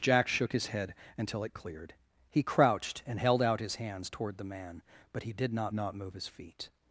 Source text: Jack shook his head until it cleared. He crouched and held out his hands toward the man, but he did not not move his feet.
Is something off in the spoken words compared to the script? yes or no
no